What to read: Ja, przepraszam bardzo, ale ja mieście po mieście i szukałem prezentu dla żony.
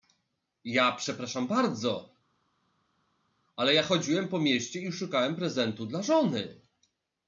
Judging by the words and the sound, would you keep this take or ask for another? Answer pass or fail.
fail